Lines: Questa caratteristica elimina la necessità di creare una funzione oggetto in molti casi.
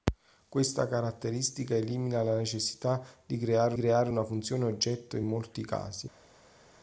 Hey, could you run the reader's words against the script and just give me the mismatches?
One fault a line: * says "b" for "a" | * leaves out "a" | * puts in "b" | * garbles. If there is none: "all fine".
* puts in "creare"